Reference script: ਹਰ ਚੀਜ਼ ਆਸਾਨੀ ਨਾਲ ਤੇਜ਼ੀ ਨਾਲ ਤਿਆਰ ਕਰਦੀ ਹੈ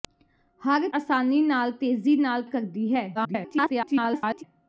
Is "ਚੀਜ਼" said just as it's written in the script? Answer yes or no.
no